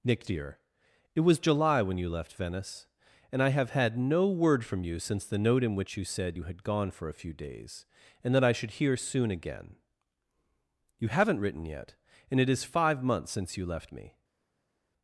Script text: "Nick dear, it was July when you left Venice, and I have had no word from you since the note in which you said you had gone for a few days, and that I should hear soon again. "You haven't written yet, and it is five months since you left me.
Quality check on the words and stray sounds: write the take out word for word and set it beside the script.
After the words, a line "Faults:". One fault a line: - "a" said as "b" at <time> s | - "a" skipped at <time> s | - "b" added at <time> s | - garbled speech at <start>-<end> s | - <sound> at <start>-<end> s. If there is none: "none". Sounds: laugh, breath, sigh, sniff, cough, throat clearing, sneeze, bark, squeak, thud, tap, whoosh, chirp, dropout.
"Nick dear, it was July when you left Venice, and I have had no word from you since the note in which you said you had gone for a few days, and that I should hear soon again. "You haven't written yet, and it is five months since you left me.
Faults:
none